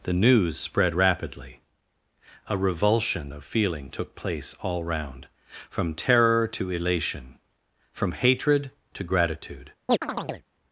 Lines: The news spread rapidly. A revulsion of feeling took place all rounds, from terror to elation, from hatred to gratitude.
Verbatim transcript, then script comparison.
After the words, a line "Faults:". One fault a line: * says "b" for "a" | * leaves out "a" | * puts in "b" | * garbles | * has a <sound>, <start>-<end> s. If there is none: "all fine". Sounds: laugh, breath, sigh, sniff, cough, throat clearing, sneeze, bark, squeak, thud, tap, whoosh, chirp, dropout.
The news spread rapidly. A revulsion of feeling took place all round, from terror to elation, from hatred to gratitude.
Faults:
* says "round" for "rounds"
* has a chirp, 9.9-10.5 s